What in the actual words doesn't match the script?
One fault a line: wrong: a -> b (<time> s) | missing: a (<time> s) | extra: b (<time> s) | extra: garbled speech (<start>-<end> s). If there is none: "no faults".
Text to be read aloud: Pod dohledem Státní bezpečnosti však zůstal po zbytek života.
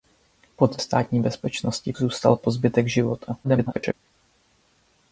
missing: dohledem (0.8 s)
missing: však (1.9 s)
extra: garbled speech (3.4-3.9 s)